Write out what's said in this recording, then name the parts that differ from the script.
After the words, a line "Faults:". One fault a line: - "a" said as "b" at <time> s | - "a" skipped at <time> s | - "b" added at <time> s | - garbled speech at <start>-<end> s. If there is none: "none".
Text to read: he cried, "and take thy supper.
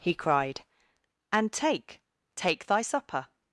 he cried, "and take take thy supper.
Faults:
- "take" added at 2.4 s